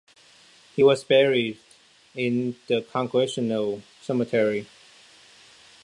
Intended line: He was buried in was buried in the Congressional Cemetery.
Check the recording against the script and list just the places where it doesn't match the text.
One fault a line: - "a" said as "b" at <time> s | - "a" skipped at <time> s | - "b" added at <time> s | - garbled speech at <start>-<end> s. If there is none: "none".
- "was buried in" skipped at 2.5 s